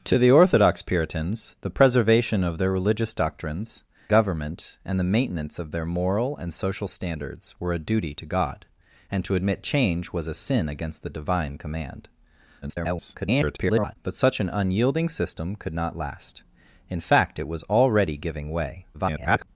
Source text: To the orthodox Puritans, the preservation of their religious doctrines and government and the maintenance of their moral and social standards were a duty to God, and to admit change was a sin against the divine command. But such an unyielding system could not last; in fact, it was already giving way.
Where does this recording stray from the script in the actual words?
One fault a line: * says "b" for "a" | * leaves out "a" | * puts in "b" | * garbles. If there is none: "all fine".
* leaves out "and"
* garbles
* garbles